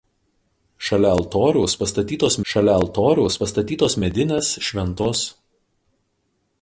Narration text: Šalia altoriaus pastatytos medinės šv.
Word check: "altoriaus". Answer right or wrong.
right